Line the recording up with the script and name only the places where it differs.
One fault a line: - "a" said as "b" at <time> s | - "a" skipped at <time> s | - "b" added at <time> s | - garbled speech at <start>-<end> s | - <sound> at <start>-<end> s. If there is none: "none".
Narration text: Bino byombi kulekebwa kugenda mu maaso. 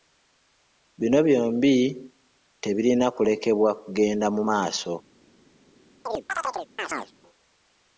- "tebirina" added at 2.6 s
- chirp at 6.1-7.1 s